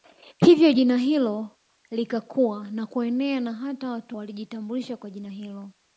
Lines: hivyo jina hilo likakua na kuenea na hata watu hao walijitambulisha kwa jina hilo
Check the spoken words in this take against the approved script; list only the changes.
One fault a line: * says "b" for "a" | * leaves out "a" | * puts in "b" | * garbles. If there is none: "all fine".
* leaves out "hao"